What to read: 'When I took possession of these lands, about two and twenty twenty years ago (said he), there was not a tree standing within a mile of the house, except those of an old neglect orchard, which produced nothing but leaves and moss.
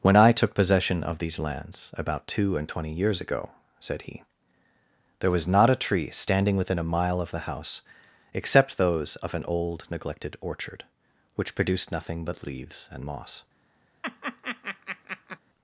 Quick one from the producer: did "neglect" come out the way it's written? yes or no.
no